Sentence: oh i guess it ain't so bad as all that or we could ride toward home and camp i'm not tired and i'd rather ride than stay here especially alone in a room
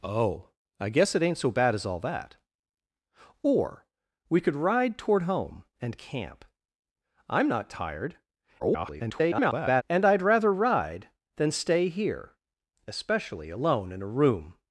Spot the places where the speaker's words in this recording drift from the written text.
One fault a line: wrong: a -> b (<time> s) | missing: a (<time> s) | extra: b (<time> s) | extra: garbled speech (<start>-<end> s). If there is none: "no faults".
extra: garbled speech (8.6-9.8 s)